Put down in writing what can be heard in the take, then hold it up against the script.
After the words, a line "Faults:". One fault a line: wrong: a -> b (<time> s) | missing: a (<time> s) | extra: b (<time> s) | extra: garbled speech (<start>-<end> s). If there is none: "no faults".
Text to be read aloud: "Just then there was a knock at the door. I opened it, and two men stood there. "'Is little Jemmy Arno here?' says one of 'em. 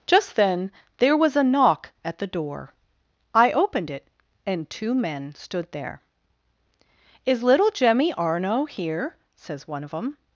"Just then there was a knock at the door. I opened it, and two men stood there. "'Is little Jemmy Arno here?' says one of 'em.
Faults:
no faults